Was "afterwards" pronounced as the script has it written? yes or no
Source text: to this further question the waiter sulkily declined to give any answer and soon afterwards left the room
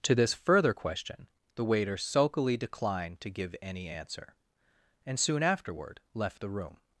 no